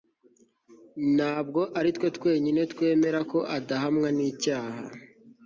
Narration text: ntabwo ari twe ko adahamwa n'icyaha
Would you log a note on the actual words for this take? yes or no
yes